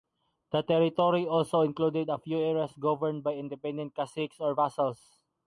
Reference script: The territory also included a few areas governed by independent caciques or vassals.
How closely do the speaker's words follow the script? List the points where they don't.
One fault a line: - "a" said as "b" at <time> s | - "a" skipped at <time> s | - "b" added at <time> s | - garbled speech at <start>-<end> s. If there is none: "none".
none